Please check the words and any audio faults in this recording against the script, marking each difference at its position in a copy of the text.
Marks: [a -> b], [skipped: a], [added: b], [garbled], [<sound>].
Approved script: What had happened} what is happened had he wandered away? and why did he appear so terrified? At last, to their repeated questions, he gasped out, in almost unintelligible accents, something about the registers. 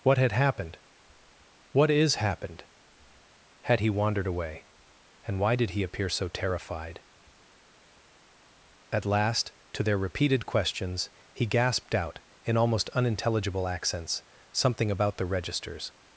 What had happened} what is happened had he wandered away? and why did he appear so terrified? At last, to their repeated questions, he gasped out, in almost unintelligible accents, something about the registers.